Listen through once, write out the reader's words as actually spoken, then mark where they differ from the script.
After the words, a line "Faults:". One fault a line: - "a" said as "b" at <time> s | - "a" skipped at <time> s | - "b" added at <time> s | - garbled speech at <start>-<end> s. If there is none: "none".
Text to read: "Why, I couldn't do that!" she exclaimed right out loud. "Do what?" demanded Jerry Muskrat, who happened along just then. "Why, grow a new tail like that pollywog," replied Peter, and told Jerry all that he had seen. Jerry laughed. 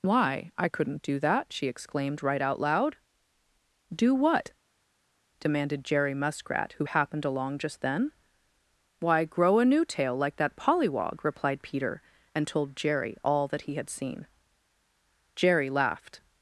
"Why, I couldn't do that!" she exclaimed right out loud. "Do what?" demanded Jerry Muskrat, who happened along just then. "Why, grow a new tail like that pollywog," replied Peter, and told Jerry all that he had seen. Jerry laughed.
Faults:
none